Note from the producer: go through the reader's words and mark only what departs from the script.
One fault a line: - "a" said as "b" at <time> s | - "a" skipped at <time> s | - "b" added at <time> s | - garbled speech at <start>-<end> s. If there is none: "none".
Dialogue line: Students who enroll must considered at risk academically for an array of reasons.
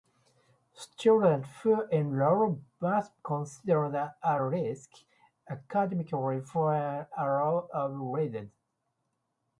none